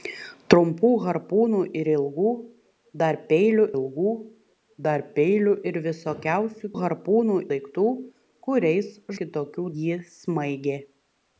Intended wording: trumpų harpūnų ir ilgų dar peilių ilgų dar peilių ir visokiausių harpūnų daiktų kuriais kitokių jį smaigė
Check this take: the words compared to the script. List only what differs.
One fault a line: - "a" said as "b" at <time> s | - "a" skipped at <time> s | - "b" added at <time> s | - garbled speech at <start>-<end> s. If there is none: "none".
none